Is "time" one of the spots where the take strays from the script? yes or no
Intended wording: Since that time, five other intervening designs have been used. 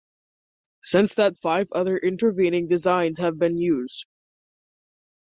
yes